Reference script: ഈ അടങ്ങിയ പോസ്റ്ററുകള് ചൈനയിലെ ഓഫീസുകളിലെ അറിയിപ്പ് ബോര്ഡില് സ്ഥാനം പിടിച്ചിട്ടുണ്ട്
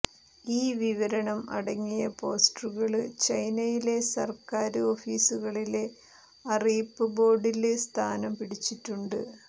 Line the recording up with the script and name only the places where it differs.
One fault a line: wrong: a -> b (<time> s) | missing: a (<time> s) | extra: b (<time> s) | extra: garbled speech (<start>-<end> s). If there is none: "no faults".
extra: വിവരണം (0.8 s)
extra: സര്ക്കാര് (4.1 s)